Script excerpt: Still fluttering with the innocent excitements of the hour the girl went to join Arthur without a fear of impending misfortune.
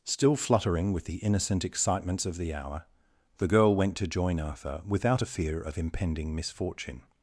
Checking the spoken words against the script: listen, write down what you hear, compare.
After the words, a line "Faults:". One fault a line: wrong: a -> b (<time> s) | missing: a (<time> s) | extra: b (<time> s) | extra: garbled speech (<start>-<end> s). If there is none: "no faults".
Still fluttering with the innocent excitements of the hour the girl went to join Arthur without a fear of impending misfortune.
Faults:
no faults